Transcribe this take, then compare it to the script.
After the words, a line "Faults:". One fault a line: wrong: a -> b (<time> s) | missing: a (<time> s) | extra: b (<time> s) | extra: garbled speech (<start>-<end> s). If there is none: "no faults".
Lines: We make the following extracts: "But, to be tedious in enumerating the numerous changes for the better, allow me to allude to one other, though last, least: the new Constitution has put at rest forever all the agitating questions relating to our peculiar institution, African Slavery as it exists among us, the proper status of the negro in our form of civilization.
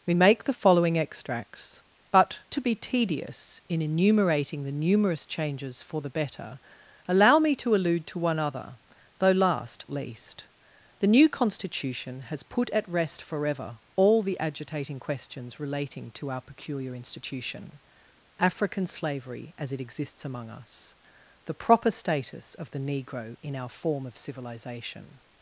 We make the following extracts: "But, to be tedious in enumerating the numerous changes for the better, allow me to allude to one other, though last, least: the new Constitution has put at rest forever all the agitating questions relating to our peculiar institution, African Slavery as it exists among us, the proper status of the negro in our form of civilization.
Faults:
no faults